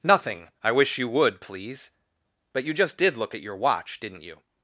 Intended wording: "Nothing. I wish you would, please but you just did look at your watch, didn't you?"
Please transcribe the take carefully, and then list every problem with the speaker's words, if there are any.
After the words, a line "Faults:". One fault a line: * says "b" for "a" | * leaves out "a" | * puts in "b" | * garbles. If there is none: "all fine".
"Nothing. I wish you would, please but you just did look at your watch, didn't you?"
Faults:
all fine